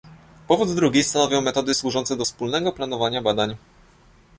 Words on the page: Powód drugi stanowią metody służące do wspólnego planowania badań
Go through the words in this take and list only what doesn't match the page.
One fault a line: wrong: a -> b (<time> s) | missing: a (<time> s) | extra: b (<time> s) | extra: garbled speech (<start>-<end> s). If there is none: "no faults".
no faults